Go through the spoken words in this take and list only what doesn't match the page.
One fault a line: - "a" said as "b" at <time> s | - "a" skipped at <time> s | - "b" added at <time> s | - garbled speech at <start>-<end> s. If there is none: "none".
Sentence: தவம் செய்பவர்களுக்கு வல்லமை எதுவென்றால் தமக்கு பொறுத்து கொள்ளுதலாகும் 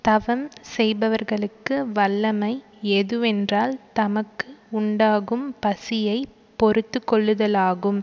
- "உண்டாகும் பசியை" added at 4.7 s